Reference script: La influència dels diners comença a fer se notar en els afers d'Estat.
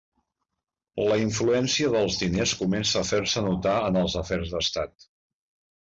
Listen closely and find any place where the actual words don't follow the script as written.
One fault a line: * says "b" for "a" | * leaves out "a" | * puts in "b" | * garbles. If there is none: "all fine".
all fine